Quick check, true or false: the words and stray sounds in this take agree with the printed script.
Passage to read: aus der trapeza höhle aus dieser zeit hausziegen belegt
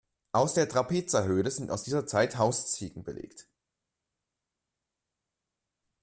false